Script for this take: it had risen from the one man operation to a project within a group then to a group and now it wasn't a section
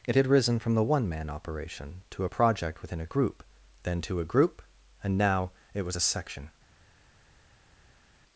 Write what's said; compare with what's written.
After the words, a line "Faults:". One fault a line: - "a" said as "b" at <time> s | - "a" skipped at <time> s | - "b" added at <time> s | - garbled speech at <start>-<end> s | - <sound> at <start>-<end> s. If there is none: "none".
it had risen from the one man operation to a project within a group then to a group and now it was a section
Faults:
- "wasn't" said as "was" at 5.8 s